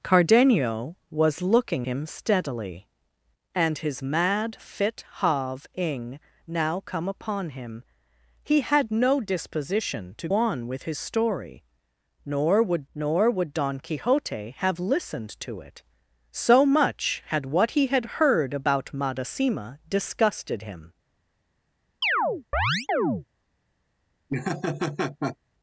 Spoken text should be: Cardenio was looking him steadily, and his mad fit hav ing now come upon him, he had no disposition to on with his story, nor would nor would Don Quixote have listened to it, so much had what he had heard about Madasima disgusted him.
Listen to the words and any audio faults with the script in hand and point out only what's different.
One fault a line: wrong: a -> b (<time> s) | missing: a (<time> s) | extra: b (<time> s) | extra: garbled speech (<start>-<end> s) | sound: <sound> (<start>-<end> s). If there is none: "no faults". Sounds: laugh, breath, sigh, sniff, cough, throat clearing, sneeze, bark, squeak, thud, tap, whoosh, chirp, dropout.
sound: chirp (22.0-23.3 s)
sound: laugh (24.3-25.4 s)